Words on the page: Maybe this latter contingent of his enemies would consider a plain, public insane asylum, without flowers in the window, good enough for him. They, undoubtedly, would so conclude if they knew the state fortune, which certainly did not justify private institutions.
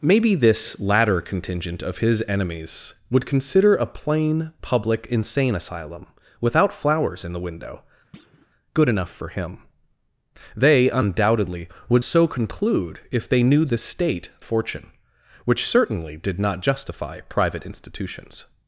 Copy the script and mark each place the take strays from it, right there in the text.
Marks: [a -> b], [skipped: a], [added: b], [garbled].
Maybe this latter contingent of his enemies would consider a plain, public insane asylum, without flowers in the window, good enough for him. They, undoubtedly, would so conclude if they knew the state fortune, which certainly did not justify private institutions.